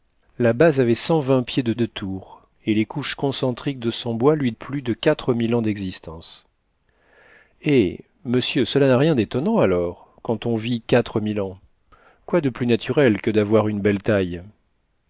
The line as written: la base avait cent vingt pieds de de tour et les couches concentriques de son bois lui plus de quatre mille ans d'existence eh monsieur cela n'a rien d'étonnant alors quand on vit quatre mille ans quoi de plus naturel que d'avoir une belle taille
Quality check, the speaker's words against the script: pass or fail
pass